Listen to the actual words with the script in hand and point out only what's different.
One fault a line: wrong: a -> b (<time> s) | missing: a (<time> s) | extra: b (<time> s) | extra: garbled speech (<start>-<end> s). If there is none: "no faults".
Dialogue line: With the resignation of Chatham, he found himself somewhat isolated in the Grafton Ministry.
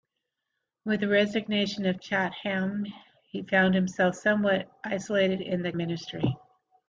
missing: Grafton (5.7 s)